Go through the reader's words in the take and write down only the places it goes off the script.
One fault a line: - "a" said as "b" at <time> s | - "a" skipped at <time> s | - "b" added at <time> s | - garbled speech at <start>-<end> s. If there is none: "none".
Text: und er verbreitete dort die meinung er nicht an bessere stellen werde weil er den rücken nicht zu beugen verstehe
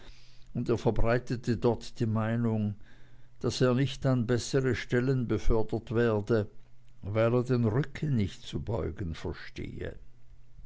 - "daß" added at 3.4 s
- "befördert" added at 5.3 s